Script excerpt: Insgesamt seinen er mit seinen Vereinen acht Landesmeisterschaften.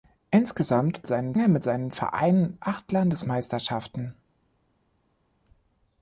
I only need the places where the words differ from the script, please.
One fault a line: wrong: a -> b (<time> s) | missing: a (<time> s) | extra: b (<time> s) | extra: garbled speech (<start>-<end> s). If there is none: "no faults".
no faults